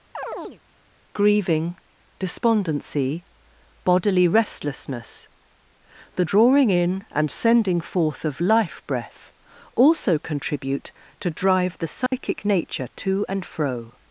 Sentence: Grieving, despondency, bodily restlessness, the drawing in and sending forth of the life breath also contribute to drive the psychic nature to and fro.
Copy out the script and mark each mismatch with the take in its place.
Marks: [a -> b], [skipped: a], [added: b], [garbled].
Grieving, despondency, bodily restlessness, the drawing in and sending forth of [skipped: the] life breath also contribute to drive the psychic nature to and fro.